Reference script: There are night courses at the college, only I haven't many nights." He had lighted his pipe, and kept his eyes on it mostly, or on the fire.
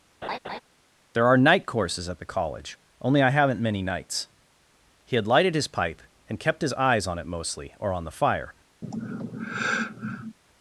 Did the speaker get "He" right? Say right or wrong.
right